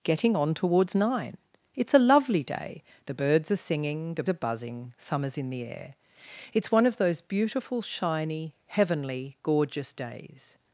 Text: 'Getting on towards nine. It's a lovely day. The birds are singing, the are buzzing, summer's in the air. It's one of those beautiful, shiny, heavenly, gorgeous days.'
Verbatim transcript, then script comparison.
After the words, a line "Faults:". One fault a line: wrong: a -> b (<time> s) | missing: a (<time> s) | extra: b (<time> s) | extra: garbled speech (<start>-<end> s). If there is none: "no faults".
'Getting on towards nine. It's a lovely day. The birds are singing, the are buzzing, summer's in the air. It's one of those beautiful, shiny, heavenly, gorgeous days.'
Faults:
no faults